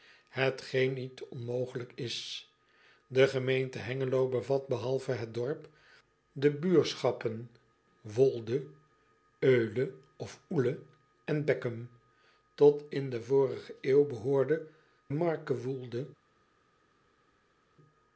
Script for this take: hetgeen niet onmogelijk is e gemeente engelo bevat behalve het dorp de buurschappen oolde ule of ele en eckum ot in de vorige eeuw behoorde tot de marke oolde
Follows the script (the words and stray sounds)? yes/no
no